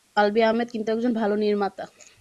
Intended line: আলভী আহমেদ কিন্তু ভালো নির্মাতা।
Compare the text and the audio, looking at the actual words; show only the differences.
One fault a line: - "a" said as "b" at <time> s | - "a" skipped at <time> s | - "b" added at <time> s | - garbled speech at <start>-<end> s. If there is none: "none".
- "একজন" added at 0.9 s